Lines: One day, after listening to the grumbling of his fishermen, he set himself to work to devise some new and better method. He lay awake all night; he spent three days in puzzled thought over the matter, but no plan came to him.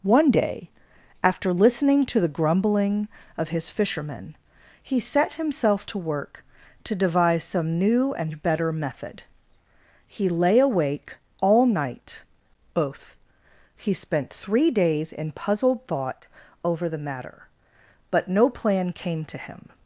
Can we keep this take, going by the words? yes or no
no